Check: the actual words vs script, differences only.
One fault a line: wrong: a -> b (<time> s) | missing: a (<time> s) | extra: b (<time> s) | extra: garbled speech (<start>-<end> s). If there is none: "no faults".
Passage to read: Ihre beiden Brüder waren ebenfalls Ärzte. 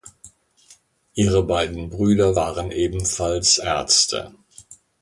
no faults